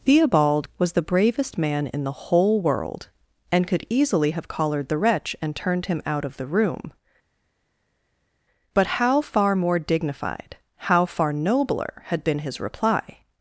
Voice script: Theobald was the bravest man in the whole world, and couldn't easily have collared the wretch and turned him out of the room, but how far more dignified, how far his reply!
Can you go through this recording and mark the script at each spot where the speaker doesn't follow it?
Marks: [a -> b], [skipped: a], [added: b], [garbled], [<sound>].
Theobald was the bravest man in the whole world, and [couldn't -> could] easily have collared the wretch and turned him out of the room, but how far more dignified, how far [added: nobler had been] his reply!